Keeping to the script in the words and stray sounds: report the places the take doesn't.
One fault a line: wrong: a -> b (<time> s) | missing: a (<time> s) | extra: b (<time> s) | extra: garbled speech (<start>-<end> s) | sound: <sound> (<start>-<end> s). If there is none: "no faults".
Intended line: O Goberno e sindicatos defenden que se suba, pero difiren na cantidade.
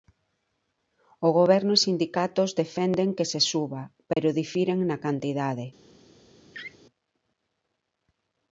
sound: dropout (4.1-4.2 s)
sound: laugh (6.5-6.8 s)